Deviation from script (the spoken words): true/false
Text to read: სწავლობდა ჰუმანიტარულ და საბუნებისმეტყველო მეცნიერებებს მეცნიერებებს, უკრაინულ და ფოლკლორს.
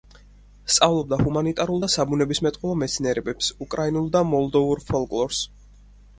true